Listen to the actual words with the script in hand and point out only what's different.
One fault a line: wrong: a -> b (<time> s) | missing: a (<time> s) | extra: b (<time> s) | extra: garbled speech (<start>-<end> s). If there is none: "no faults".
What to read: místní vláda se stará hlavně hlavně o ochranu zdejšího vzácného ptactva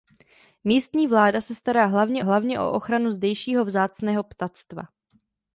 no faults